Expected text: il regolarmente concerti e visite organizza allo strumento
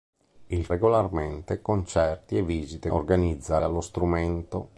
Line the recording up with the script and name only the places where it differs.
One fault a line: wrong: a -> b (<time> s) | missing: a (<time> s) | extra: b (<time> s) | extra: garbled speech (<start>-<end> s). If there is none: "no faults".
no faults